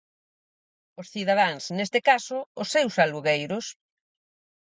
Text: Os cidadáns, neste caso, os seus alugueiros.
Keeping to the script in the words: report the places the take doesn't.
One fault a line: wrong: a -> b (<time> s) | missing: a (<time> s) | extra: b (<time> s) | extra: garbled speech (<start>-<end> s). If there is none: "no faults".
no faults